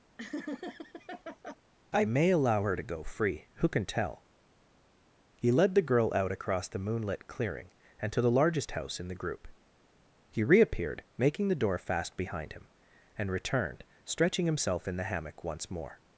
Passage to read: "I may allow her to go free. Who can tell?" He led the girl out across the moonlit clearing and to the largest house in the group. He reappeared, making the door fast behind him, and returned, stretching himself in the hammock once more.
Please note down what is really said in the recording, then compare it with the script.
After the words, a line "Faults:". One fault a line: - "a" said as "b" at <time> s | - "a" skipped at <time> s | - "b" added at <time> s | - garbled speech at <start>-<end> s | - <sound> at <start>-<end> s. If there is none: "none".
"I may allow her to go free. Who can tell?" He led the girl out across the moonlit clearing and to the largest house in the group. He reappeared, making the door fast behind him, and returned, stretching himself in the hammock once more.
Faults:
- laugh at 0.2-1.6 s